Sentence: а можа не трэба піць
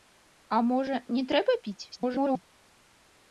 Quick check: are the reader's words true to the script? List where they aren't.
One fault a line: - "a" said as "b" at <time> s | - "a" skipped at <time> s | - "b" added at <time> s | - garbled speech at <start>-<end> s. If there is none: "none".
- garbled speech at 1.9-2.4 s